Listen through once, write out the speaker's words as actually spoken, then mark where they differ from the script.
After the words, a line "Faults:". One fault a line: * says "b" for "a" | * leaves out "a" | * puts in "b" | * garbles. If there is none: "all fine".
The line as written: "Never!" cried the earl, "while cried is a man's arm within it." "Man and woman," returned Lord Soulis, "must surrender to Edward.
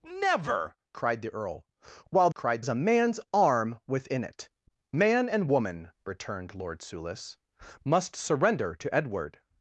"Never!" cried the earl, "while cried is a man's arm within it." "Man and woman," returned Lord Soulis, "must surrender to Edward.
Faults:
all fine